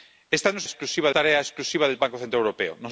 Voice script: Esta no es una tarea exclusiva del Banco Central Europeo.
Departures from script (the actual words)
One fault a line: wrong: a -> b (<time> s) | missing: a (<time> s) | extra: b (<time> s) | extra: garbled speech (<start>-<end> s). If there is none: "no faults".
wrong: una -> exclusiva (0.6 s)